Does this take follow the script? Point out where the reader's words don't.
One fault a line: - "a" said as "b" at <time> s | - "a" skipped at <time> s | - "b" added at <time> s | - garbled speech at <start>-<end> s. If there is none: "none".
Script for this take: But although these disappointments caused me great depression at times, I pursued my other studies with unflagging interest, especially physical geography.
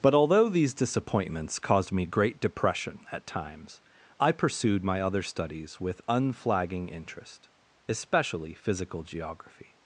none